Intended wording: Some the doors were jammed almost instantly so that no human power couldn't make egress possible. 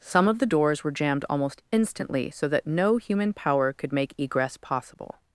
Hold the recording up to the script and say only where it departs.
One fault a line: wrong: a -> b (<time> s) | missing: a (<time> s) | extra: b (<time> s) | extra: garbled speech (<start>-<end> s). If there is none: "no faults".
extra: of (0.3 s)
wrong: couldn't -> could (3.7 s)